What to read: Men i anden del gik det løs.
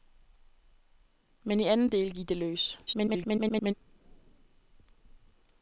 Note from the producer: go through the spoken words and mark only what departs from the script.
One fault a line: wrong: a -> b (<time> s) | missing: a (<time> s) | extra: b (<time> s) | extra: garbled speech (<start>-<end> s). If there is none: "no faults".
extra: garbled speech (2.9-3.7 s)